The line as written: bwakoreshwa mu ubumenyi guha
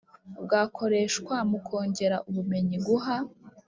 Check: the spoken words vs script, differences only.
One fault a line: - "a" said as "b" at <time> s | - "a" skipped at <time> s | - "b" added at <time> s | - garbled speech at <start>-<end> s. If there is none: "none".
- "kongera" added at 1.7 s